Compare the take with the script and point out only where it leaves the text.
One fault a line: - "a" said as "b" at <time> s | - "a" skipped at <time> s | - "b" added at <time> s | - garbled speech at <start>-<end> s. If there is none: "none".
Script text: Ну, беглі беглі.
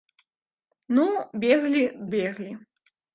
none